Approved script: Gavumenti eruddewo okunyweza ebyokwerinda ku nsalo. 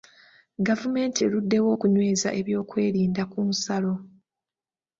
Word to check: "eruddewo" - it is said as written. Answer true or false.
true